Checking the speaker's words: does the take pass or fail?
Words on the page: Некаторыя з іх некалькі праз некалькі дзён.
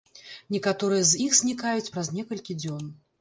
fail